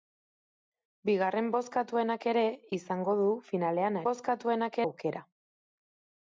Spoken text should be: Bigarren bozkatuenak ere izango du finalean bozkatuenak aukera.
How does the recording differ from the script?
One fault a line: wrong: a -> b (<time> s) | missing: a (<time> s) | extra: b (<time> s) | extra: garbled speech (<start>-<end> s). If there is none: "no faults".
no faults